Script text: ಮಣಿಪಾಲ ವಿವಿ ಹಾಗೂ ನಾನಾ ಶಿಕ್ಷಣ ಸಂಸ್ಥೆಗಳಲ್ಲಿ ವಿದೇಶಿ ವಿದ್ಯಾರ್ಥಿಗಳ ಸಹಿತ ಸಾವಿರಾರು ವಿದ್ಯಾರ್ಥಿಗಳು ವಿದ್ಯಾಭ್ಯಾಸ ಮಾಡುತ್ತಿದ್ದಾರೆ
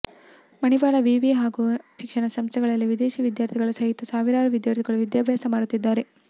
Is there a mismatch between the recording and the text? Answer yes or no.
yes